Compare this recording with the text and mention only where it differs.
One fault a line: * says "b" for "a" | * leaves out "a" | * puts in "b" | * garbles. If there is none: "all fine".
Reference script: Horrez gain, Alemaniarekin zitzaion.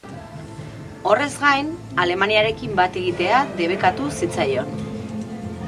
* puts in "bat egitea debekatu"